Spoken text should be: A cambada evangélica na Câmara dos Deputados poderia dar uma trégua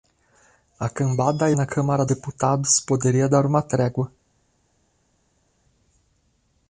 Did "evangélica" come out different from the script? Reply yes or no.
yes